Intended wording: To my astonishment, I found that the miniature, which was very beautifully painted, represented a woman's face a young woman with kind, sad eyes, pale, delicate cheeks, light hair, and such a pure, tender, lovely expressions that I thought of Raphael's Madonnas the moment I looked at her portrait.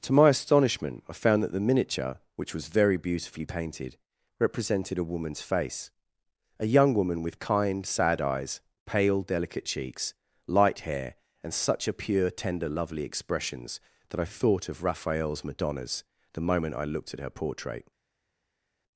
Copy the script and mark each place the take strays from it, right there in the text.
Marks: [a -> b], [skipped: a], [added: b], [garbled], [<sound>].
To my astonishment, I found that the miniature, which was very beautifully painted, represented a woman's face a young woman with kind, sad eyes, pale, delicate cheeks, light hair, and such a pure, tender, lovely expressions that I thought of Raphael's Madonnas the moment I looked at her portrait.